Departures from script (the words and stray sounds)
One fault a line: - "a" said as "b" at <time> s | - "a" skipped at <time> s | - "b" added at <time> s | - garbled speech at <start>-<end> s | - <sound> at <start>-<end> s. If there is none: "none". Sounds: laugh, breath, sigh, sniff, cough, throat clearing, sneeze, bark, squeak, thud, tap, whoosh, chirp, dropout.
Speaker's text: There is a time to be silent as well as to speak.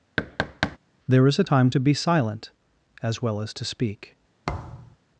- thud at 0.2-0.8 s
- thud at 4.5-5.0 s